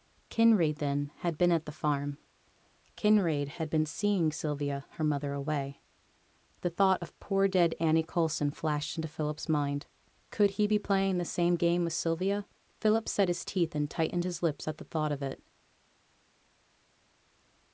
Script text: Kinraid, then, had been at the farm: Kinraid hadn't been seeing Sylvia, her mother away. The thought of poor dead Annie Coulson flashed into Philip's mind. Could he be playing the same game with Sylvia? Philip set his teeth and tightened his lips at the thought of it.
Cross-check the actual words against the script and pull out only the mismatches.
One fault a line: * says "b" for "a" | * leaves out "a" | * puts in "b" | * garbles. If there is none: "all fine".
* says "had" for "hadn't"